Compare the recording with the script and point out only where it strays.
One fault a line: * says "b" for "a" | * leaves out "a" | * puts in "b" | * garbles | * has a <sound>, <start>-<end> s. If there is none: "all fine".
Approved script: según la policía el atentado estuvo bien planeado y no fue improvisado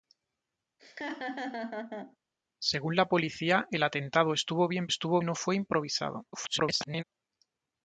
* has a laugh, 0.8-2.2 s
* says "estuvo" for "planeado"
* garbles